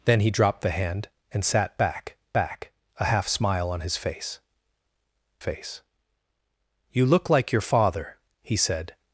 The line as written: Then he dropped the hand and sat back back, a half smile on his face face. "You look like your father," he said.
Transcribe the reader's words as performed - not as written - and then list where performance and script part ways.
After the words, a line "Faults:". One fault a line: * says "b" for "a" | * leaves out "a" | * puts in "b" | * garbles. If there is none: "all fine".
Then he dropped the hand and sat back back, a half smile on his face face. "You look like your father," he said.
Faults:
all fine